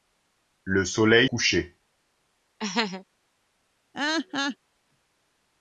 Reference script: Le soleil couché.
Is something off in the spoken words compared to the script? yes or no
no